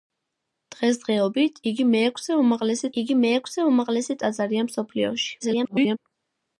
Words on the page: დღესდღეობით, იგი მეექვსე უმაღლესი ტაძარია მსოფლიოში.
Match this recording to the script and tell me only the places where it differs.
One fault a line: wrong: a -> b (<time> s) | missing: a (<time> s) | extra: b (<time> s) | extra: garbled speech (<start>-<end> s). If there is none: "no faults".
extra: იგი მეექვსე უმაღლესი (3.0 s)
extra: garbled speech (5.4-6.0 s)